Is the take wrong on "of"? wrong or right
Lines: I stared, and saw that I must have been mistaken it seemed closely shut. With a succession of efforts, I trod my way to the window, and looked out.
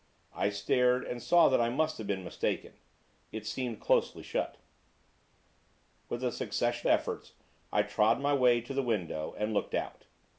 wrong